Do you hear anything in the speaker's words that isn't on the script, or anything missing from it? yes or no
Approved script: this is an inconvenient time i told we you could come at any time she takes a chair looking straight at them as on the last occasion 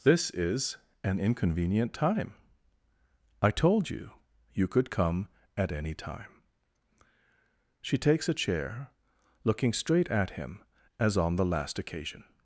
yes